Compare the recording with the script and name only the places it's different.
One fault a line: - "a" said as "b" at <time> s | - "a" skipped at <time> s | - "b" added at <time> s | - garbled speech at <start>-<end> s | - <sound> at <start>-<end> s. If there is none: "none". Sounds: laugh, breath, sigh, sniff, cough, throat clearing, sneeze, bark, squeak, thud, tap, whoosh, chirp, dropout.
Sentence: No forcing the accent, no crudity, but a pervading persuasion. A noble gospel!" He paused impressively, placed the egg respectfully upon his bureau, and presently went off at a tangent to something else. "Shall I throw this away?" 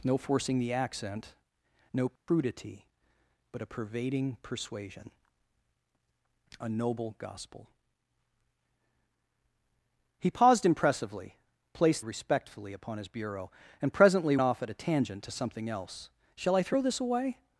- dropout at 2.2-2.3 s
- "the egg" skipped at 12.1 s
- "went" skipped at 14.4 s